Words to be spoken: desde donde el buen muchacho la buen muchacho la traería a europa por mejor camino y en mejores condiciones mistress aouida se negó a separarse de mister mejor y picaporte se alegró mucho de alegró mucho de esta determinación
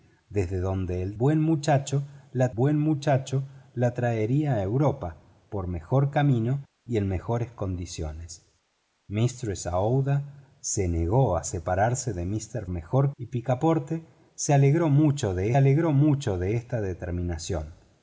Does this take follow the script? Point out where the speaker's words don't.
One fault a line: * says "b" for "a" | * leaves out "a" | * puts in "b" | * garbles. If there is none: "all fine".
all fine